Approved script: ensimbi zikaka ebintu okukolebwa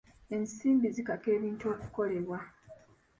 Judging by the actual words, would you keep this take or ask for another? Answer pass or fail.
pass